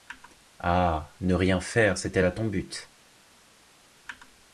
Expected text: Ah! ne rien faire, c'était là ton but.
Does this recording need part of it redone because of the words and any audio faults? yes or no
no